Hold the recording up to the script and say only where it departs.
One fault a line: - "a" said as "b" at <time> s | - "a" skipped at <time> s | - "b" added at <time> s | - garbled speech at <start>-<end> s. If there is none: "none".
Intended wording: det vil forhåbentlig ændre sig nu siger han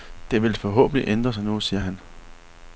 none